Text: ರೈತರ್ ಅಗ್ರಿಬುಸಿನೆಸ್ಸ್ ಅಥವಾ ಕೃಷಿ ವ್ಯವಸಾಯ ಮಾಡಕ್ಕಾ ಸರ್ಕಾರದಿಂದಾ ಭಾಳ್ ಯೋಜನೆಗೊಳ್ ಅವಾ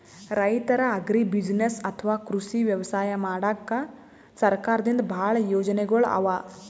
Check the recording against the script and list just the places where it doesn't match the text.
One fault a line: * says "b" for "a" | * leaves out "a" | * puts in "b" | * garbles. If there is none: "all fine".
all fine